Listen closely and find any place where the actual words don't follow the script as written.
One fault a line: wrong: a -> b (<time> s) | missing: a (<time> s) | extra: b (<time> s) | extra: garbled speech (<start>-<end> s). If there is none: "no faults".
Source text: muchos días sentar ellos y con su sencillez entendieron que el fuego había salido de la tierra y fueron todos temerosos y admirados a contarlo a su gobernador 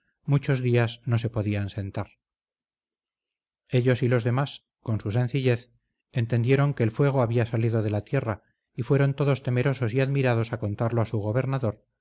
extra: no se podían (1.1 s)
extra: los demás (4.1 s)